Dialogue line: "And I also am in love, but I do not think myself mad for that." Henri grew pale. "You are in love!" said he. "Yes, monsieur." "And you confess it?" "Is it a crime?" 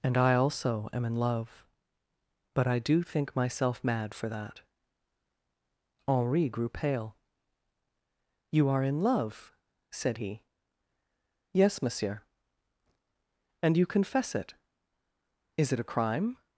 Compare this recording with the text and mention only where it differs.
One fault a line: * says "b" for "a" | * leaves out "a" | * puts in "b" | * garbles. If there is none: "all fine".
* leaves out "not"